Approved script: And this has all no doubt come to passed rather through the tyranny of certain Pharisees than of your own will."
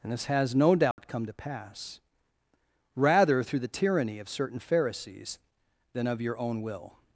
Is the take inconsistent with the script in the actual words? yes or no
yes